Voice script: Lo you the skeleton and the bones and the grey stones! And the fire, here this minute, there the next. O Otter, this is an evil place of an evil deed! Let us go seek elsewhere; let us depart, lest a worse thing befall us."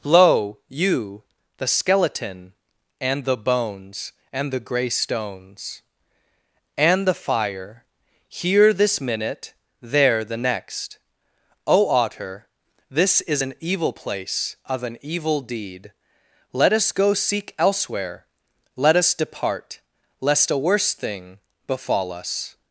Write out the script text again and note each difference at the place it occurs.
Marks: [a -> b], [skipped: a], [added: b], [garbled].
Lo you the skeleton and the bones and the grey stones! And the fire, here this minute, there the next. O Otter, this is an evil place of an evil deed! Let us go seek elsewhere; let us depart, lest a worse thing befall us."